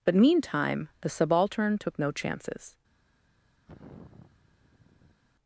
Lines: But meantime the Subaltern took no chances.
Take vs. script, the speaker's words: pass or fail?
pass